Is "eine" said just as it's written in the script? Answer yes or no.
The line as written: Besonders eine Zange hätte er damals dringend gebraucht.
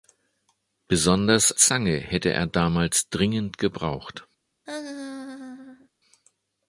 no